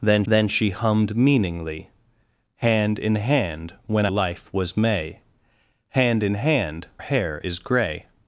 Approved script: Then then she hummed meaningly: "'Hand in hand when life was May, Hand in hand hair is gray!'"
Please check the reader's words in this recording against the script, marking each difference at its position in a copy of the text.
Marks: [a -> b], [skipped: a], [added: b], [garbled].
Then then she hummed meaningly: "'Hand in hand when life was May, Hand in hand hair is gray!'"